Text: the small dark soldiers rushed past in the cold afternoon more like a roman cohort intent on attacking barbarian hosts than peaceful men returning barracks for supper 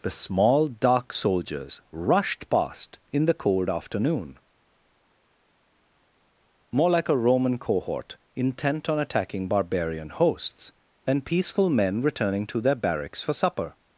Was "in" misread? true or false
false